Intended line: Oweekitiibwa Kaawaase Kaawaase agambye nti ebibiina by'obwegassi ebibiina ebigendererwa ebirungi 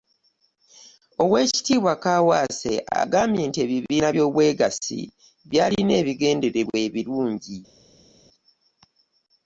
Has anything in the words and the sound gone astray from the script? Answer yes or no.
yes